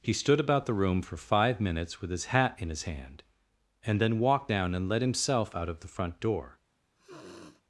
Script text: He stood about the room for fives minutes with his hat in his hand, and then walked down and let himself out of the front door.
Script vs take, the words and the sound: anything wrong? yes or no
yes